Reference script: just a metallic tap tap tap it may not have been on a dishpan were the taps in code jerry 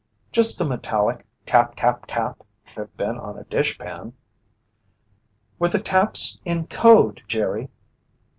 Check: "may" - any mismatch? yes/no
yes